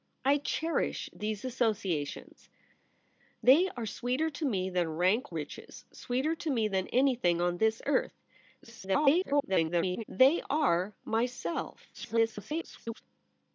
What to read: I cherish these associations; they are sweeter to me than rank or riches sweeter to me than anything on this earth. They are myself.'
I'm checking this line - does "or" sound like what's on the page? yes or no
no